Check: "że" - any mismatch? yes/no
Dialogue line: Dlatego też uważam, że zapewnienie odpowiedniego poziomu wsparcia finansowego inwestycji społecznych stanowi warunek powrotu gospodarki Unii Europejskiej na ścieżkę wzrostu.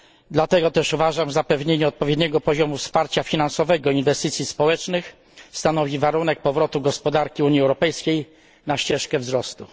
yes